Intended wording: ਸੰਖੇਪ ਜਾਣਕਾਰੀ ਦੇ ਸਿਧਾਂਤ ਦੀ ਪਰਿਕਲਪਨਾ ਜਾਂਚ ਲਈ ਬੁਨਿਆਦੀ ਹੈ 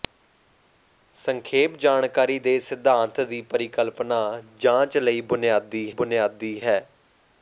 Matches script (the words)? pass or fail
fail